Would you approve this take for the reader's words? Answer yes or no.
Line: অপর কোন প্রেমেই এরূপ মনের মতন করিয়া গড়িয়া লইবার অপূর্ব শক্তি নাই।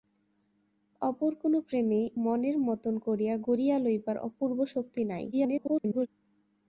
no